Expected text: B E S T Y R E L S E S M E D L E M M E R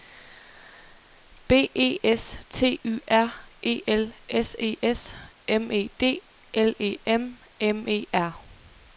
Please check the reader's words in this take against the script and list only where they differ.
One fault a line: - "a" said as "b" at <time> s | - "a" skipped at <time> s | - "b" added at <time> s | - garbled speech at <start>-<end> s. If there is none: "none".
none